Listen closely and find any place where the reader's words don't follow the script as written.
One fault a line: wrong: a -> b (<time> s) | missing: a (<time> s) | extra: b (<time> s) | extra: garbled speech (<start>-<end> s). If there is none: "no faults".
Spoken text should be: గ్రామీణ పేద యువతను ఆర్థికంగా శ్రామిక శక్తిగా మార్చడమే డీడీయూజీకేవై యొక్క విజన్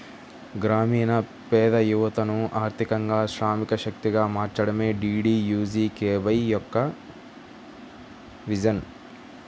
no faults